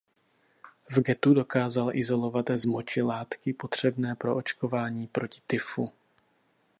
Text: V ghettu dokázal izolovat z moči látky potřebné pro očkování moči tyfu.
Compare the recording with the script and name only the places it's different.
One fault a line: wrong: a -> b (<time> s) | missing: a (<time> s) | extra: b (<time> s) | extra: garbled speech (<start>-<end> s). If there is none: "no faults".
wrong: moči -> proti (5.1 s)